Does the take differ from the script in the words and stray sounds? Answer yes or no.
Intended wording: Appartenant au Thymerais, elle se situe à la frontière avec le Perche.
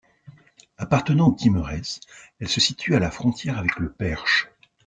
no